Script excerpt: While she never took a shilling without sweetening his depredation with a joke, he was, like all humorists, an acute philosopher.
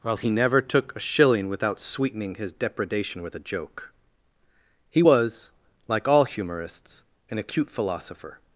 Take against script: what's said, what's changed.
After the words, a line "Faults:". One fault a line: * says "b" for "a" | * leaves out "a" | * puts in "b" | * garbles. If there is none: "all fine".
While he never took a shilling without sweetening his depredation with a joke, he was, like all humorists, an acute philosopher.
Faults:
* says "he" for "she"